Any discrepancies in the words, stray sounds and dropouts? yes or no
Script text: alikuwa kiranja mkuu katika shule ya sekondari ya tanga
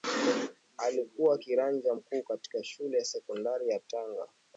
no